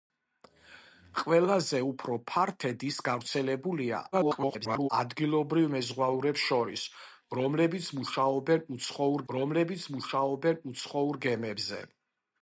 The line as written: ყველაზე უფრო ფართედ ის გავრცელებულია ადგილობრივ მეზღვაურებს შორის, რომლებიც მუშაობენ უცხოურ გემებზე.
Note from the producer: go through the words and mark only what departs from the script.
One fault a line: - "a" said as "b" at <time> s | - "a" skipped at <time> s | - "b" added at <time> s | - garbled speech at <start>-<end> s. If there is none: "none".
- garbled speech at 4.1-4.9 s
- "რომლებიც მუშაობენ უცხოურ" added at 9.3 s